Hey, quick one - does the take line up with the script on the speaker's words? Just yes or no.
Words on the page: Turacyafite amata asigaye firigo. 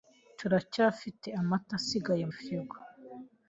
yes